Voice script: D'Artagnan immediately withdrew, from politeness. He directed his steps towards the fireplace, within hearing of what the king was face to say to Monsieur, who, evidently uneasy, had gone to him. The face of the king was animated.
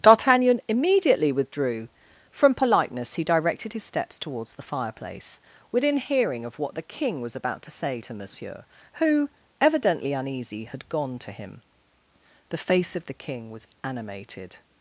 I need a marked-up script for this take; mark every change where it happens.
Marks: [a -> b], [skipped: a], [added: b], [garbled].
D'Artagnan immediately withdrew, from politeness. He directed his steps towards the fireplace, within hearing of what the king was [face -> about] to say to Monsieur, who, evidently uneasy, had gone to him. The face of the king was animated.